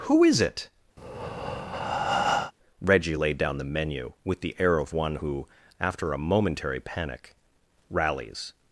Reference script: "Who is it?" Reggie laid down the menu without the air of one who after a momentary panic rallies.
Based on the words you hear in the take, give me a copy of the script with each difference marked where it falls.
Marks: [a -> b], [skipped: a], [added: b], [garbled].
"Who is it?" Reggie laid down the menu [without -> with] the air of one who after a momentary panic rallies.